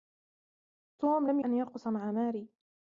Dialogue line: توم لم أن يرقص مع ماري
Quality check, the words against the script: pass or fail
pass